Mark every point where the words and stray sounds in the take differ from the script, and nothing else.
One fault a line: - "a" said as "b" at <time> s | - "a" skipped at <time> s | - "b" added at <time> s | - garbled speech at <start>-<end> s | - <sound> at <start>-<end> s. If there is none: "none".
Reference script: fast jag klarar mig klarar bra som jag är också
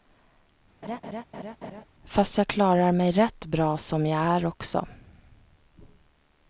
- laugh at 0.8-1.9 s
- "klarar" said as "rätt" at 3.1 s